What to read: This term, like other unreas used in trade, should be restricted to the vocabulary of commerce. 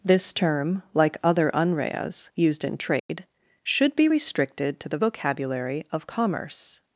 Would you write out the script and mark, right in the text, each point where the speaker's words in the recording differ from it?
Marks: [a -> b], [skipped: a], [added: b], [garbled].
This term, like other unreas used in trade, should be restricted to the vocabulary of commerce.